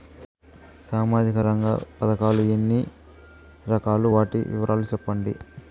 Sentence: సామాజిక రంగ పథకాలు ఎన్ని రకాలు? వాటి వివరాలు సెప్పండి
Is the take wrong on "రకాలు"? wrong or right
right